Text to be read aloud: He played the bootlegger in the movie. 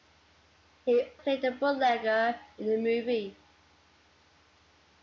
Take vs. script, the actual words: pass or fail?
pass